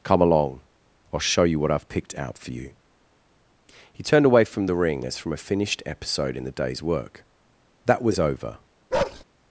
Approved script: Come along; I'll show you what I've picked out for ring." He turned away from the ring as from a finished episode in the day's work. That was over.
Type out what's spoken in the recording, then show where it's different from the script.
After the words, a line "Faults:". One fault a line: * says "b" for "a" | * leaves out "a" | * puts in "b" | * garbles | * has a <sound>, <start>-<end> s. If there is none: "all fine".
Come along; I'll show you what I've picked out for you." He turned away from the ring as from a finished episode in the day's work. That was over.
Faults:
* says "you" for "ring"
* has a bark, 8.9-9.2 s